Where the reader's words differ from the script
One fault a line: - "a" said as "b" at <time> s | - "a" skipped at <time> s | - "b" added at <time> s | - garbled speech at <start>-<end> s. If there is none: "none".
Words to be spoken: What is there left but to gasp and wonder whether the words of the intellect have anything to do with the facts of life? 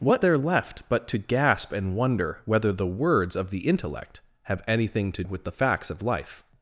- "is" skipped at 0.2 s
- "do" skipped at 5.2 s